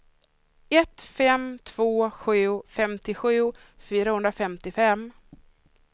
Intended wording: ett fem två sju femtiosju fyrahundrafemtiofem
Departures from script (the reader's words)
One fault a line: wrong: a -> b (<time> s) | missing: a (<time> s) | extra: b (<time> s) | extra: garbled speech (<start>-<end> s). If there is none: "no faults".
no faults